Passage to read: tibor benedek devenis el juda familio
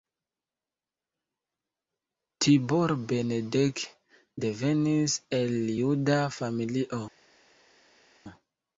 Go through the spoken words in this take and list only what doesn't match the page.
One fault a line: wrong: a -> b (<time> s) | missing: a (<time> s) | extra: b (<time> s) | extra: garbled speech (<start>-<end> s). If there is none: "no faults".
no faults